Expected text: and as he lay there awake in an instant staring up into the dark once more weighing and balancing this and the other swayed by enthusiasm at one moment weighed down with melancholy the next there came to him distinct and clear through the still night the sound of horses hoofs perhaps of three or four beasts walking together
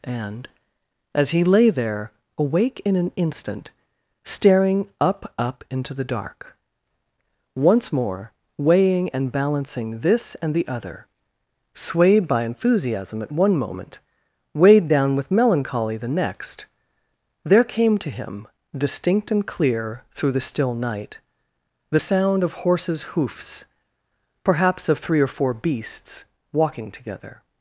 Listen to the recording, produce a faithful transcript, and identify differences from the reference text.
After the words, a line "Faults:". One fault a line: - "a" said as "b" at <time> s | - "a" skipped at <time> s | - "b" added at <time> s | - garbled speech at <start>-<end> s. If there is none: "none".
and as he lay there awake in an instant staring up up into the dark once more weighing and balancing this and the other swayed by enthusiasm at one moment weighed down with melancholy the next there came to him distinct and clear through the still night the sound of horses hoofs perhaps of three or four beasts walking together
Faults:
- "up" added at 5.4 s